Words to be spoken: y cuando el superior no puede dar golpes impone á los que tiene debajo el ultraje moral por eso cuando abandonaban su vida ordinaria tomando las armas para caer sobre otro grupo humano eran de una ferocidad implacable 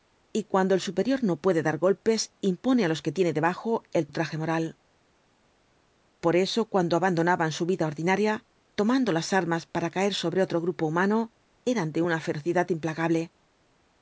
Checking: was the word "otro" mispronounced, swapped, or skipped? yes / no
no